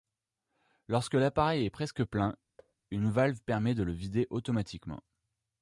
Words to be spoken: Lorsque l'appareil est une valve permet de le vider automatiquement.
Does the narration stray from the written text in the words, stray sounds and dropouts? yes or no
yes